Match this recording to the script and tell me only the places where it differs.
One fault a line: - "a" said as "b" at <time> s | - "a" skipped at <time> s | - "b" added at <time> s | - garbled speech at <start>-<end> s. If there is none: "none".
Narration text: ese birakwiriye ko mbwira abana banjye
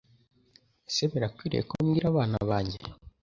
none